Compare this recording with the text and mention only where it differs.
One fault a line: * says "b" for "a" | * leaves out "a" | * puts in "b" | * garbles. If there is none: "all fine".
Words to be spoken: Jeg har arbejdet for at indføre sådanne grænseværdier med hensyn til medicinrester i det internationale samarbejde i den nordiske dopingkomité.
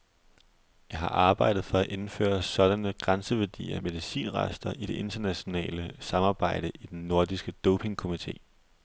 * leaves out "med hensyn til"